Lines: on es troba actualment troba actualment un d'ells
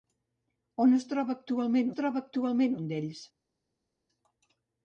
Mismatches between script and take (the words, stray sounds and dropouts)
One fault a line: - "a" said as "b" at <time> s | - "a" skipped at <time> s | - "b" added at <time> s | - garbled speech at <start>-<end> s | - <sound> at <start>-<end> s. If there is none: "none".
none